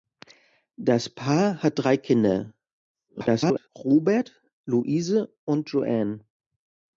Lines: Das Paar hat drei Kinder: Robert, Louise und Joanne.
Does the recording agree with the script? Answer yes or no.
no